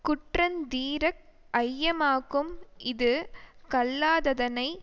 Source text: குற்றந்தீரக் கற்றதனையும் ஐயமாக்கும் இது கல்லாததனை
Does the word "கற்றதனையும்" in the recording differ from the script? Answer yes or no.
yes